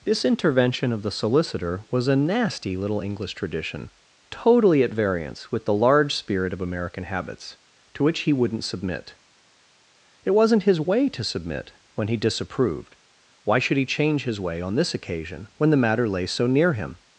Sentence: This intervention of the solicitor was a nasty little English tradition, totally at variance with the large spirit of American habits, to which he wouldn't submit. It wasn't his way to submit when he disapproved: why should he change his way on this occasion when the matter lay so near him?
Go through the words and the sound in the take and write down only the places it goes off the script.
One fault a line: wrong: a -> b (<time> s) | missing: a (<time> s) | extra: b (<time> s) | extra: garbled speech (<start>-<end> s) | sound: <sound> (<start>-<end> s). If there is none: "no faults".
no faults